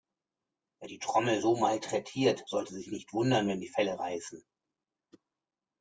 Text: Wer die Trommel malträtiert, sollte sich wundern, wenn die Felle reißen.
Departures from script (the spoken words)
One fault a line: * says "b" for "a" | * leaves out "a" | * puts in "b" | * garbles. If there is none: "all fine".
* puts in "so"
* puts in "nicht"